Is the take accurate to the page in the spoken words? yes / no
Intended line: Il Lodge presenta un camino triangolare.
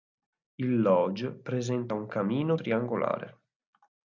yes